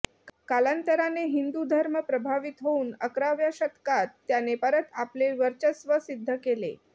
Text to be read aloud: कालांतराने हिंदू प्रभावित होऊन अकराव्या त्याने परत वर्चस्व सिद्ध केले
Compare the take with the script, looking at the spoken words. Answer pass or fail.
fail